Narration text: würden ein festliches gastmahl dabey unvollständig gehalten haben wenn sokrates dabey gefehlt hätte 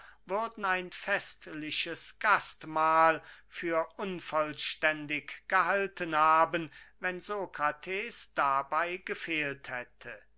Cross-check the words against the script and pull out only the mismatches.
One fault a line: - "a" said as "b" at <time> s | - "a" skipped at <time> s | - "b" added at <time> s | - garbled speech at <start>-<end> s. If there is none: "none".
- "dabey" said as "für" at 3.5 s